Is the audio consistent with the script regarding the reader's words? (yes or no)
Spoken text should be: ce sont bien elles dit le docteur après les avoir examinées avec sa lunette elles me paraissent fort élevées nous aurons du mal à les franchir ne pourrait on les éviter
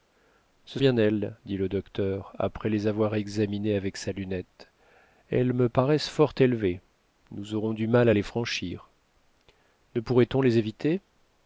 no